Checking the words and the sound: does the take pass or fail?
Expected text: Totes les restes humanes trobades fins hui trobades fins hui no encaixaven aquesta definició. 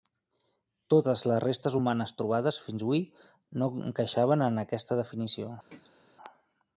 fail